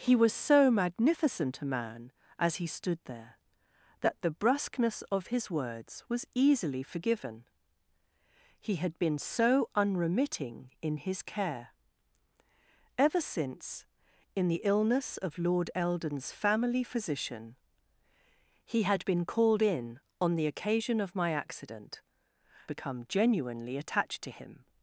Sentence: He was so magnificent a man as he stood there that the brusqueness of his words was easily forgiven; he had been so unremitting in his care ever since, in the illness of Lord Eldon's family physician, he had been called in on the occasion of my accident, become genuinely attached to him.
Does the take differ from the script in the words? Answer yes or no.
no